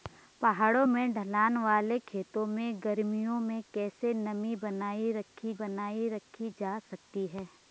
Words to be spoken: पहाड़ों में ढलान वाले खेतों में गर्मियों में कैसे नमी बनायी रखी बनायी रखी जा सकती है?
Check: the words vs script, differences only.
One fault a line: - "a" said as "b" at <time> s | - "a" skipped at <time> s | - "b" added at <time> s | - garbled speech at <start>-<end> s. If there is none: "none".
none